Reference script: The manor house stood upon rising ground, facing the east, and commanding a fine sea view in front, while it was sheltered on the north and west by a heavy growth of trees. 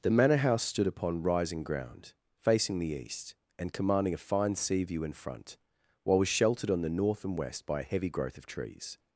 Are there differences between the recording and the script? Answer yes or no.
yes